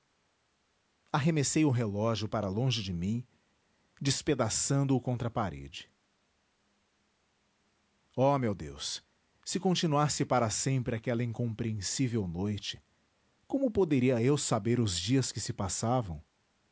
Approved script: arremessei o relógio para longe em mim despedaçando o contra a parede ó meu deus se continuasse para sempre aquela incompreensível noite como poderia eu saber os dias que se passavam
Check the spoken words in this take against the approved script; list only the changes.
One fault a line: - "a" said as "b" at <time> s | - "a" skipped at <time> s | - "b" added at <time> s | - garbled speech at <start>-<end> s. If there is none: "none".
- "em" said as "de" at 2.8 s